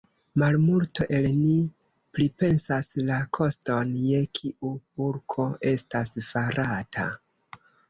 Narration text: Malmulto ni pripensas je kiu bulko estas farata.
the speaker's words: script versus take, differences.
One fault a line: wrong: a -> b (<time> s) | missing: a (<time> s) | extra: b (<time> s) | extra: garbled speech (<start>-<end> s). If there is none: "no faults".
extra: el (1.2 s)
extra: la koston (3.1 s)